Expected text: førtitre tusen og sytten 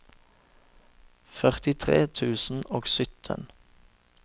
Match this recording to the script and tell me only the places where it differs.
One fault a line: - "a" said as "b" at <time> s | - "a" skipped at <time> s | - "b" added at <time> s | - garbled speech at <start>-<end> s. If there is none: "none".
none